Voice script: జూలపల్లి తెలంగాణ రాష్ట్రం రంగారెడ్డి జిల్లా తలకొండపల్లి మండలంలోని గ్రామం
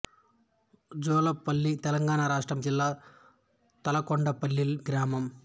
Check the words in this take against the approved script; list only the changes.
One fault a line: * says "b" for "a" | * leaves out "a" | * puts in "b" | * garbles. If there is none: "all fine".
* leaves out "రంగారెడ్డి"
* leaves out "మండలంలోని"